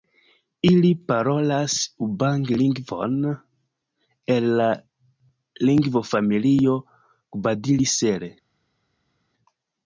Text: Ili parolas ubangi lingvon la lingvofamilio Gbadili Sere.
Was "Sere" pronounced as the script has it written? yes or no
yes